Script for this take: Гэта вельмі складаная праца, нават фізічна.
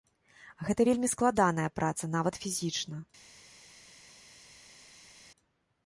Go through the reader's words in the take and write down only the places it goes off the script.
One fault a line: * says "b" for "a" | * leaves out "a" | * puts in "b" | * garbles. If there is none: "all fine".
all fine